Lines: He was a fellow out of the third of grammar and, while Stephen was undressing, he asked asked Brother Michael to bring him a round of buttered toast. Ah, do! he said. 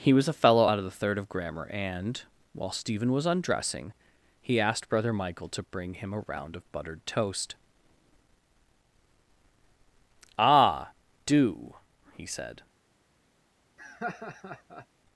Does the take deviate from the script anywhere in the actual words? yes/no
yes